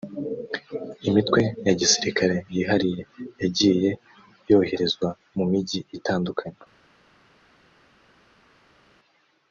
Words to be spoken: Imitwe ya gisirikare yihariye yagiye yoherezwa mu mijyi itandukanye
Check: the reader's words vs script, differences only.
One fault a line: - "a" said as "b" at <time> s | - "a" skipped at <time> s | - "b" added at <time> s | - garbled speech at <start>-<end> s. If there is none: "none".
none